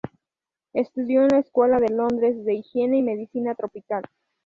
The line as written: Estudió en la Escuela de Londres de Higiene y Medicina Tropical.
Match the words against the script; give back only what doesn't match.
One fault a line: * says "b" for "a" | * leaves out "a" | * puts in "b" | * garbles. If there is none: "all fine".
all fine